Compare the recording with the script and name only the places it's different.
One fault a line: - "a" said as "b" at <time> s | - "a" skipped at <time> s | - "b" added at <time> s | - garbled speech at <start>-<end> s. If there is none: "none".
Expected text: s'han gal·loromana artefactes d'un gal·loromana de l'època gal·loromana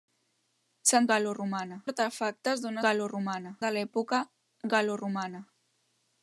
none